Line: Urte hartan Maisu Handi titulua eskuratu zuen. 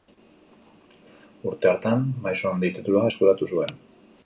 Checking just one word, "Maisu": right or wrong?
right